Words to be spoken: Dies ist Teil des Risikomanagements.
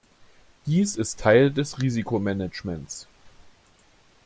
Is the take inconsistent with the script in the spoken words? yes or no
no